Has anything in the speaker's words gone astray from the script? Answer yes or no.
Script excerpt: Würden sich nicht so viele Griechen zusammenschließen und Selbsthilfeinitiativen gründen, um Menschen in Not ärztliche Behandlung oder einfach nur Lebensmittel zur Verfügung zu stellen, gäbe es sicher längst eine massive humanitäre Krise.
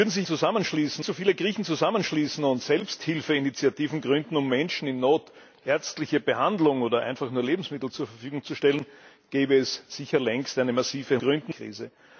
yes